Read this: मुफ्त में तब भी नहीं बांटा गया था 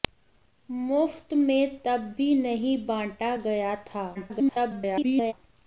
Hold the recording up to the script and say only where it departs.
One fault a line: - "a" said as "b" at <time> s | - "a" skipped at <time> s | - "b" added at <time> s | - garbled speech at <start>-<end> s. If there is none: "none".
- garbled speech at 4.1-5.3 s